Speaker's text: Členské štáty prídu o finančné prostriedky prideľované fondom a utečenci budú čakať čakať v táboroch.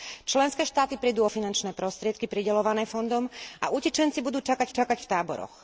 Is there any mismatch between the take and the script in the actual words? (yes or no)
no